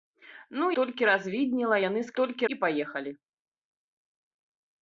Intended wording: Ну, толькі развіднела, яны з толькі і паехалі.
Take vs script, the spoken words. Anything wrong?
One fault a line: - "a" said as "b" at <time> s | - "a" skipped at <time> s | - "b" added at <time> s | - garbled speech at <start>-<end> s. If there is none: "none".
none